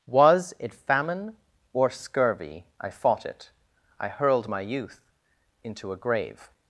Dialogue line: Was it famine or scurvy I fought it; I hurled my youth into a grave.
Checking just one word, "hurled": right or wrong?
right